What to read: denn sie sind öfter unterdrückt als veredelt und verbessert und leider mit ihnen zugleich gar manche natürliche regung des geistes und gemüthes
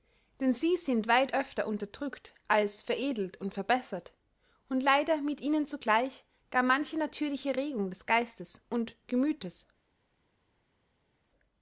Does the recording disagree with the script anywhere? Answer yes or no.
yes